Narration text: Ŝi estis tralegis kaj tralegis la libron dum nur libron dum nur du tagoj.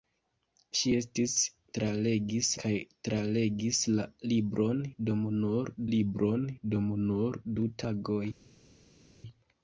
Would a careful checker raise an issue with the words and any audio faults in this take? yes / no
no